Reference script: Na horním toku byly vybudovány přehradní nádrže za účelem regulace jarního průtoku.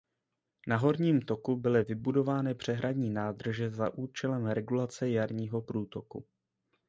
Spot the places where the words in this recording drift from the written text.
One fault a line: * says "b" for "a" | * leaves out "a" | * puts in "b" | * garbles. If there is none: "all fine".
all fine